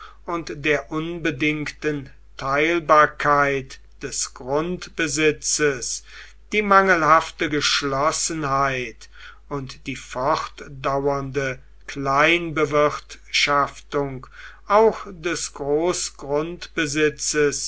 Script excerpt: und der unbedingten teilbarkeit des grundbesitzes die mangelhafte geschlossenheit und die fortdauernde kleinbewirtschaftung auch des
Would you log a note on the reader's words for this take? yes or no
no